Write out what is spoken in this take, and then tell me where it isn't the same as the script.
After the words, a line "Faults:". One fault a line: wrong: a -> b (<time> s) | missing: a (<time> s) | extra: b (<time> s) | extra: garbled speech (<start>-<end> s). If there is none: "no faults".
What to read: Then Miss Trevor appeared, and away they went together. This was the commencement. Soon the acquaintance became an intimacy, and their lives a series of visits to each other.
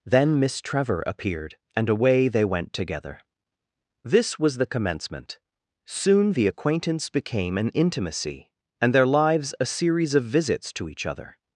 Then Miss Trevor appeared, and away they went together. This was the commencement. Soon the acquaintance became an intimacy, and their lives a series of visits to each other.
Faults:
no faults